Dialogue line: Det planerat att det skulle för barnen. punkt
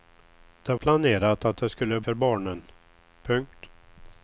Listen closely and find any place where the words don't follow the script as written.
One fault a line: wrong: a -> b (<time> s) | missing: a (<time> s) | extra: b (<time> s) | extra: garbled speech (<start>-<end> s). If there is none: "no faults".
no faults